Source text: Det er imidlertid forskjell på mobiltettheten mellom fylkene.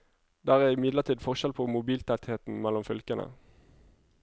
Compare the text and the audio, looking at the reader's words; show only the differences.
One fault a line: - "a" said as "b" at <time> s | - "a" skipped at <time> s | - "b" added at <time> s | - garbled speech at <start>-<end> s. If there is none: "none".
none